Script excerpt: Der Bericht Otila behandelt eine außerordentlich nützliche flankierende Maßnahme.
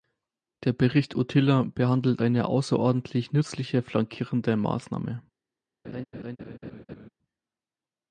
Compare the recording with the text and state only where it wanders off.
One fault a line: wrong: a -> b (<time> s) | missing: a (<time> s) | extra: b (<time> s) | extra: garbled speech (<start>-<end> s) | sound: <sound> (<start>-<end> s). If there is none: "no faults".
sound: laugh (5.8-7.1 s)